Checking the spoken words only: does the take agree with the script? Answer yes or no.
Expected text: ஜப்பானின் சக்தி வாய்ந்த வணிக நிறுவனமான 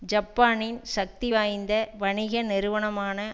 yes